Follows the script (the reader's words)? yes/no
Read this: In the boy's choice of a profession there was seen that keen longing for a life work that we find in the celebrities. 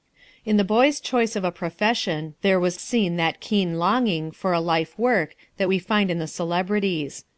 yes